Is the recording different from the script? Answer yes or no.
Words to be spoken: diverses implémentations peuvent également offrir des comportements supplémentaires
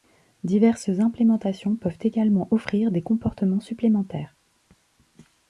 no